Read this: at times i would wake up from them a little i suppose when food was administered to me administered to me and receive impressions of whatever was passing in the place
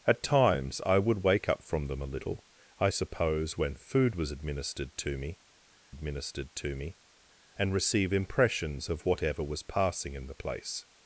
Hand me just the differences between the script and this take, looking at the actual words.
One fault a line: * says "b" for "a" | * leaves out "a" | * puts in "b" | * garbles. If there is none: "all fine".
all fine